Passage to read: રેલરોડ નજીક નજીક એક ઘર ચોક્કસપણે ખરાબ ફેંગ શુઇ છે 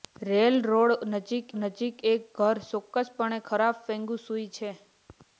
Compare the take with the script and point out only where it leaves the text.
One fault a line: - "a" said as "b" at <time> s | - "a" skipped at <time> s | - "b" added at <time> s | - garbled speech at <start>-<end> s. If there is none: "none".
none